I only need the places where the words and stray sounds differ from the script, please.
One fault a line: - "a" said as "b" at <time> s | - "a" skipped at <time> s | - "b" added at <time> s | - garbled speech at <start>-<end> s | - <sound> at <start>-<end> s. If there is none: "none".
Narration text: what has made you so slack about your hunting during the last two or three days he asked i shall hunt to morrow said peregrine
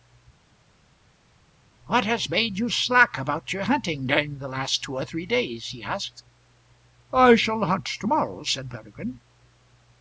- "so" skipped at 2.7 s